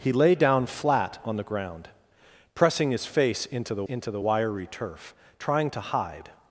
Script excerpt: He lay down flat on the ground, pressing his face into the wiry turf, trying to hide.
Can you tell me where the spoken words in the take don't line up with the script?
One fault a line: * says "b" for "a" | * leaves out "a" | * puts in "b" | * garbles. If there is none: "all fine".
* puts in "into the"